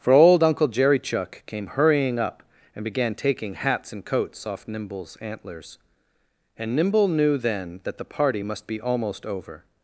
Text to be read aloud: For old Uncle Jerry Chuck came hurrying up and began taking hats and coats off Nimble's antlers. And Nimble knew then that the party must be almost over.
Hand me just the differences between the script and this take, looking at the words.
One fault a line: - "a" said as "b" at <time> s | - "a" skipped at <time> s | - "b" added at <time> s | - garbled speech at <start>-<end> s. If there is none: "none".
none